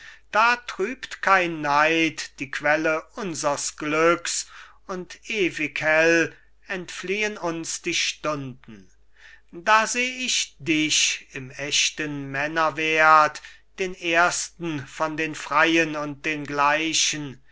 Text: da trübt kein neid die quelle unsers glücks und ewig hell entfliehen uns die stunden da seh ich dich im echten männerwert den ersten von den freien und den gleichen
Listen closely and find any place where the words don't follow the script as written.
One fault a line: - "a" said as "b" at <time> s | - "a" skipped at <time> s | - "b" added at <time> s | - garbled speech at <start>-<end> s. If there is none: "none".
none